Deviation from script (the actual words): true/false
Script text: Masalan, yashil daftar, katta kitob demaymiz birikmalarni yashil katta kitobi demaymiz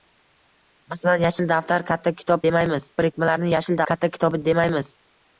false